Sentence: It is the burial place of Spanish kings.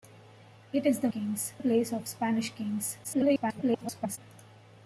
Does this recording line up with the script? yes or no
no